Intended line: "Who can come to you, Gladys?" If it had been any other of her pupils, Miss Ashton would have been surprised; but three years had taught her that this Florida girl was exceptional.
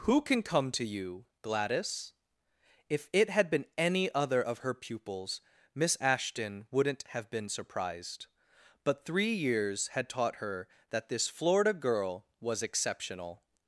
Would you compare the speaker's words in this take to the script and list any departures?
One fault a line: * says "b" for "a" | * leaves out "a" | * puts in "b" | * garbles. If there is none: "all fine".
* says "wouldn't" for "would"